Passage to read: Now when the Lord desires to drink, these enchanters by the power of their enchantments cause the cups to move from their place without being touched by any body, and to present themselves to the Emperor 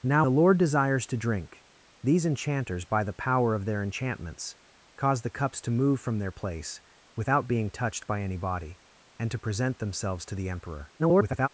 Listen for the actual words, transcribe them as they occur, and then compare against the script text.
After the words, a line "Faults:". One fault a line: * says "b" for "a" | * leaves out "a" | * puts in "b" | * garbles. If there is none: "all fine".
Now the Lord desires to drink, these enchanters by the power of their enchantments cause the cups to move from their place without being touched by any body, and to present themselves to the Emperor [garbled]
Faults:
* leaves out "when"
* garbles